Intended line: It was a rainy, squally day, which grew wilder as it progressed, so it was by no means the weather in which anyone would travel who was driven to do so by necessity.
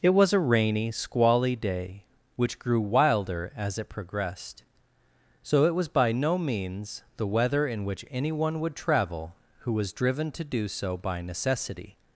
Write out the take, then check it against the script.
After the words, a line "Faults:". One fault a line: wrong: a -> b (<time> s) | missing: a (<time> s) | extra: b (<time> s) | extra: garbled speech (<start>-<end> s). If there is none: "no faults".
It was a rainy, squally day, which grew wilder as it progressed, so it was by no means the weather in which anyone would travel who was driven to do so by necessity.
Faults:
no faults